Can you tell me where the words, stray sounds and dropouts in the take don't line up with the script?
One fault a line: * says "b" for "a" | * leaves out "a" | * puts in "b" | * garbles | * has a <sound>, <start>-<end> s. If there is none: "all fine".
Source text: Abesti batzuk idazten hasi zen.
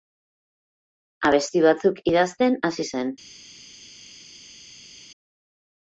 all fine